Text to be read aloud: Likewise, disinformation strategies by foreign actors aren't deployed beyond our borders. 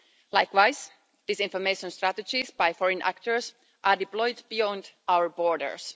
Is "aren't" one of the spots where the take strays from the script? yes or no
yes